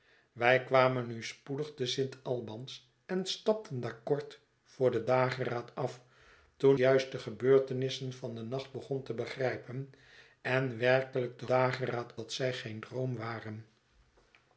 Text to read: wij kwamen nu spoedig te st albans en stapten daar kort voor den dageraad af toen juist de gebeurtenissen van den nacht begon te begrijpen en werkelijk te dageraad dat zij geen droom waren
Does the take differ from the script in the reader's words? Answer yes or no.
no